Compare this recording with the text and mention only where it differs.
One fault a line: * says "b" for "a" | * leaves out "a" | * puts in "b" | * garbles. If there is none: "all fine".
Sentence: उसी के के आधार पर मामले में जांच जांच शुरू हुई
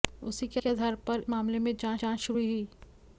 all fine